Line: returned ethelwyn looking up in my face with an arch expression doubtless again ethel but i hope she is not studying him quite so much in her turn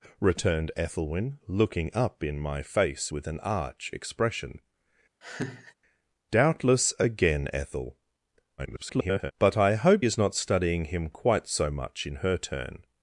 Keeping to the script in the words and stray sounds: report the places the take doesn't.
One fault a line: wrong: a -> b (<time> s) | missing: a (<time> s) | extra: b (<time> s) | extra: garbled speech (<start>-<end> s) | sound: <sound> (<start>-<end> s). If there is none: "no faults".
sound: laugh (5.2-5.7 s)
extra: garbled speech (8.6-9.3 s)
missing: she (10.0 s)